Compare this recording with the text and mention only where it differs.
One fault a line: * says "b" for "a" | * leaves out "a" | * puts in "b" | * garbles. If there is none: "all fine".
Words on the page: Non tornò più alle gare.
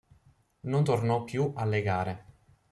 all fine